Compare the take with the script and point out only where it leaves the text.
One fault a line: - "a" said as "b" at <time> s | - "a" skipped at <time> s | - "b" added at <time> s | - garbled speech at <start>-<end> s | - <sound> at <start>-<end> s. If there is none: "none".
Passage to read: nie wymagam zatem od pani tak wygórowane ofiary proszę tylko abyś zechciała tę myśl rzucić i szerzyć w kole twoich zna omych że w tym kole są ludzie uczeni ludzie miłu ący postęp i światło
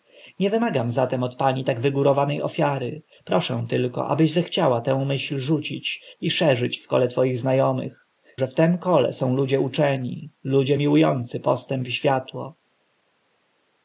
none